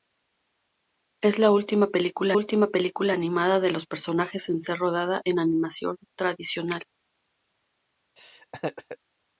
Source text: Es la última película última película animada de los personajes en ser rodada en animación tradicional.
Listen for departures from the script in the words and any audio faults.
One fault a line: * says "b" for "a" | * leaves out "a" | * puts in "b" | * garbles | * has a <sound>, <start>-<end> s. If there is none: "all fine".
* has a laugh, 8.2-9.0 s